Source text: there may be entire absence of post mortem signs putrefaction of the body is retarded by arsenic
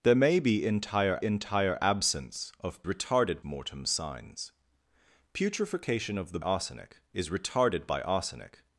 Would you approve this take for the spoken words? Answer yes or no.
no